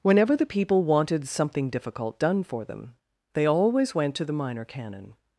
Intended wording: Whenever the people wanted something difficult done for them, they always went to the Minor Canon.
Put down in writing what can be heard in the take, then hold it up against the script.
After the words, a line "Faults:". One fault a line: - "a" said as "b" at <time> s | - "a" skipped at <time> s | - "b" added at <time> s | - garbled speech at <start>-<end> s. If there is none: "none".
Whenever the people wanted something difficult done for them, they always went to the Minor Canon.
Faults:
none